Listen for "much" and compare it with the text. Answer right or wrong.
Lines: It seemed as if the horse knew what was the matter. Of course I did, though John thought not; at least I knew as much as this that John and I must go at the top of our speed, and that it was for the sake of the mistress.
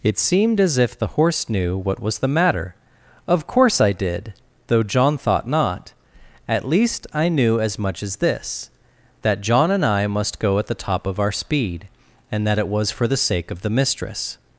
right